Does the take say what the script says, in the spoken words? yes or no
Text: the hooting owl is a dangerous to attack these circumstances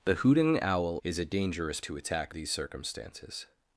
yes